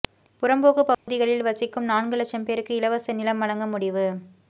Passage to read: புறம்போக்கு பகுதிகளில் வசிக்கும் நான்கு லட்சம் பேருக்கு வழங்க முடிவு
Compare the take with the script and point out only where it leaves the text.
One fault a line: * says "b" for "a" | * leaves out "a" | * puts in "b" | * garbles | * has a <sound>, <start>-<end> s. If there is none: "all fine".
* has a dropout, 0.9-1.1 s
* puts in "இலவச நிலம்"